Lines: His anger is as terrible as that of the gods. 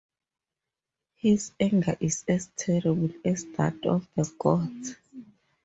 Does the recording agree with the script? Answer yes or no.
yes